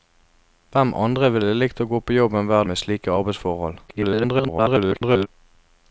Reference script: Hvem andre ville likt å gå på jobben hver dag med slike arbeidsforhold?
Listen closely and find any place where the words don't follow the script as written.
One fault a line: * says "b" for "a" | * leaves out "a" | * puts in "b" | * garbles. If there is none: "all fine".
* leaves out "dag"
* garbles